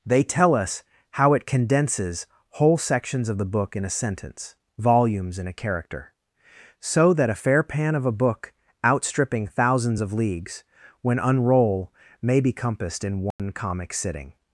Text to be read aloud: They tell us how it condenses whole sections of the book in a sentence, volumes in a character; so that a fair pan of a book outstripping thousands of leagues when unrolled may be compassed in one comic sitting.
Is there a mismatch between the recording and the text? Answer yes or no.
yes